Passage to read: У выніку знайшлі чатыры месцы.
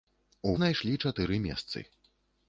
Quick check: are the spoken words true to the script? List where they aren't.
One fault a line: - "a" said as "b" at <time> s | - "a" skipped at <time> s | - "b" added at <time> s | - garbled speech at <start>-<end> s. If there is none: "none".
- "выніку" skipped at 0.5 s